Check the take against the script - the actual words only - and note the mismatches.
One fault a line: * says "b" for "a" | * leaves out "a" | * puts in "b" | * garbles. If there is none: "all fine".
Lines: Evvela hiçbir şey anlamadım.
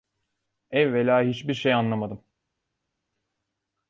all fine